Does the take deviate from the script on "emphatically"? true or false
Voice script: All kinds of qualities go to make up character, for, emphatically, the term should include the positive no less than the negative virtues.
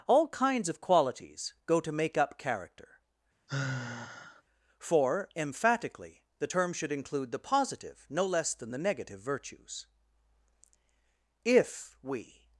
false